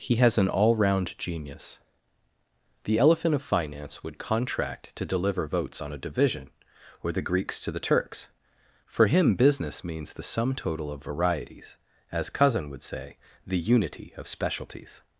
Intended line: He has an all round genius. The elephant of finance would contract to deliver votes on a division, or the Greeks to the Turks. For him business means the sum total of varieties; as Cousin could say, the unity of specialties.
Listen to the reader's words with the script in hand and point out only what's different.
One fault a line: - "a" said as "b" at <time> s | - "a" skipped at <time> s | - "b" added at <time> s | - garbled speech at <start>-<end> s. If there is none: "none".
- "could" said as "would" at 12.7 s